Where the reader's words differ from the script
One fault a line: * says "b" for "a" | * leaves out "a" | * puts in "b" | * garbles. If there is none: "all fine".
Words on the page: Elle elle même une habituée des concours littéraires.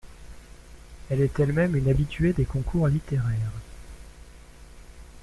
* puts in "est"